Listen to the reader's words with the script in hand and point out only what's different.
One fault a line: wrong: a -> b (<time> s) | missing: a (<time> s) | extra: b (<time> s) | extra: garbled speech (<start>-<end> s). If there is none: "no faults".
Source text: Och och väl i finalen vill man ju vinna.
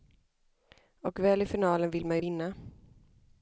missing: och (1.2 s)